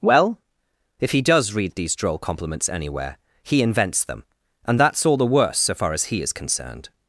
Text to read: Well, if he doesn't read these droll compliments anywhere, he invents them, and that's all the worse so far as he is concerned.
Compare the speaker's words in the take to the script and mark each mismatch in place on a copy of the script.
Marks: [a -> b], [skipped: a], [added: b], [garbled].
Well, if he [doesn't -> does] read these droll compliments anywhere, he invents them, and that's all the worse so far as he is concerned.